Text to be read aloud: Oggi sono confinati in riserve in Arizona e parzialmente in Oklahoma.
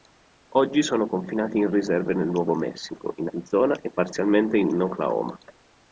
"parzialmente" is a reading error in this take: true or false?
false